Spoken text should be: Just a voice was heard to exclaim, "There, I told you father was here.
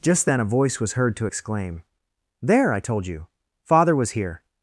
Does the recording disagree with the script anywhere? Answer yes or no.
yes